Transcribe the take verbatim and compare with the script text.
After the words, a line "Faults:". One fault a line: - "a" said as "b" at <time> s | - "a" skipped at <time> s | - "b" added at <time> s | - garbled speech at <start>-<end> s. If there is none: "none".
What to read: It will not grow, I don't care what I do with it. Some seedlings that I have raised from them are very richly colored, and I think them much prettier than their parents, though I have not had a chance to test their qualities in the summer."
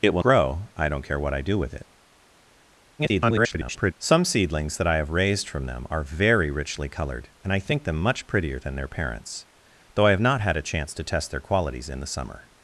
It will grow, I don't care what I do with it. [garbled] Some seedlings that I have raised from them are very richly colored, and I think them much prettier than their parents, though I have not had a chance to test their qualities in the summer."
Faults:
- "not" skipped at 0.2 s
- garbled speech at 3.0-3.9 s